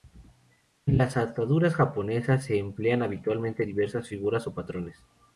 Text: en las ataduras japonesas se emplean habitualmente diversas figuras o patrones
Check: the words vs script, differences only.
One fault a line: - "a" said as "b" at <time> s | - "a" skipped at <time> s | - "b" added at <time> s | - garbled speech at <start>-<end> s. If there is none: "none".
none